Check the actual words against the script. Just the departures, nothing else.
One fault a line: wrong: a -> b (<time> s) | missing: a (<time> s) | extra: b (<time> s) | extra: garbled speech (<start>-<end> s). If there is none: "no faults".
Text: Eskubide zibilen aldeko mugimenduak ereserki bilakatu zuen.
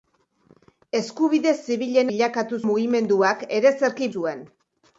wrong: aldeko -> bilakatu (2.1 s)
missing: bilakatu (4.1 s)